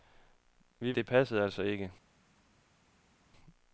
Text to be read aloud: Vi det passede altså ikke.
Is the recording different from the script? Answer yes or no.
no